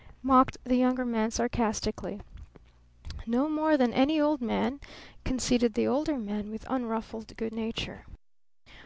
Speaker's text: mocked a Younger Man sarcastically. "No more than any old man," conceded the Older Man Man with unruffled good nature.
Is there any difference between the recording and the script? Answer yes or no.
yes